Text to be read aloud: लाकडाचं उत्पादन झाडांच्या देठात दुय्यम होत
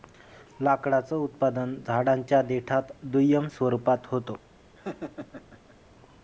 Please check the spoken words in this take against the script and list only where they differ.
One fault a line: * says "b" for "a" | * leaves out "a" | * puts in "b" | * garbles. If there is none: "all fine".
* puts in "स्वरूपात"